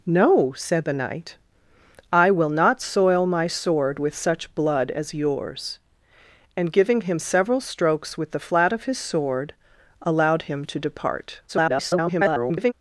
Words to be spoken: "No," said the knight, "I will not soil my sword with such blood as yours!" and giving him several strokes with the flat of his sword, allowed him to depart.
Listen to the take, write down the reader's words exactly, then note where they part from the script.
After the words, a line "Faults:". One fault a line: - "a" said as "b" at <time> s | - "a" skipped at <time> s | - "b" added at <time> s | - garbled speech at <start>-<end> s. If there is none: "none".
"No," said the knight, "I will not soil my sword with such blood as yours!" and giving him several strokes with the flat of his sword, allowed him to depart. [garbled]
Faults:
- garbled speech at 11.5-12.7 s